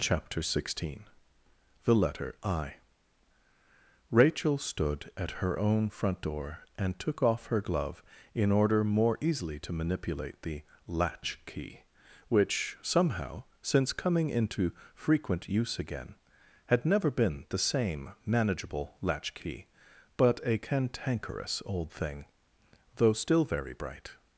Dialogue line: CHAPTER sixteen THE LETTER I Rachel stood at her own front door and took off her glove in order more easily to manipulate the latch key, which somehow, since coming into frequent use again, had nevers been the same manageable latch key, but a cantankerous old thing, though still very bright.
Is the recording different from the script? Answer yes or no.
yes